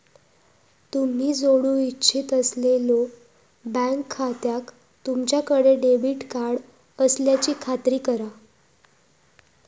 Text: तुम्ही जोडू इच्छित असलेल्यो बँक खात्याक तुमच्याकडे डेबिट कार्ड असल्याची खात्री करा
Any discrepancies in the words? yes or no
no